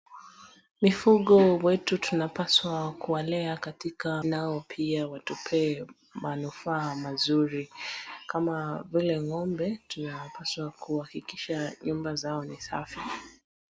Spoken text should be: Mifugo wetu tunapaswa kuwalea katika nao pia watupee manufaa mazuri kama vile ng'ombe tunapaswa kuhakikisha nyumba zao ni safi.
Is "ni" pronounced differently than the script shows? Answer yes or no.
no